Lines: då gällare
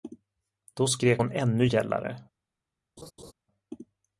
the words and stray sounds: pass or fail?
fail